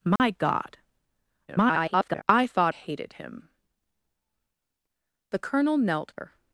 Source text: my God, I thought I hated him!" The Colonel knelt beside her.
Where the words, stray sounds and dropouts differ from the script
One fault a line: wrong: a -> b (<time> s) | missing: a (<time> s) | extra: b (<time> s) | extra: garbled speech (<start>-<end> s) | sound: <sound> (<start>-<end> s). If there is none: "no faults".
sound: dropout (0.2-0.2 s)
extra: garbled speech (1.5-2.2 s)
missing: I (2.7 s)
missing: beside (6.2 s)